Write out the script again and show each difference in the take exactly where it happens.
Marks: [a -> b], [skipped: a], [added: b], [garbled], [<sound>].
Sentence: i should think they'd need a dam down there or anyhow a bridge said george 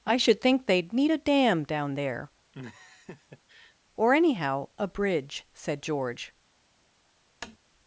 i should think they'd need a dam down there [laugh] or anyhow a bridge said george [tap]